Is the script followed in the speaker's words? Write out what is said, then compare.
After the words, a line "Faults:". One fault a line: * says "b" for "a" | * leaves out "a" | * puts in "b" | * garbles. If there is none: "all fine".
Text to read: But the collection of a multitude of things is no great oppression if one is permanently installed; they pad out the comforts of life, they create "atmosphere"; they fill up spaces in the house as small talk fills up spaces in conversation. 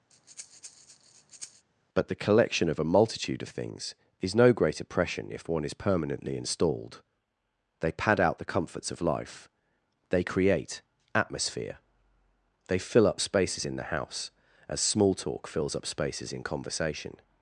But the collection of a multitude of things is no great oppression if one is permanently installed; they pad out the comforts of life, they create "atmosphere"; they fill up spaces in the house as small talk fills up spaces in conversation.
Faults:
all fine